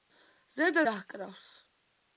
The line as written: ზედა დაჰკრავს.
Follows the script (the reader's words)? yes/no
yes